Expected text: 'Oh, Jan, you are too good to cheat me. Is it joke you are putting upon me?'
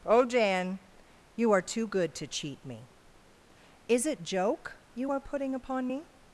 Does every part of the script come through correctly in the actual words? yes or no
yes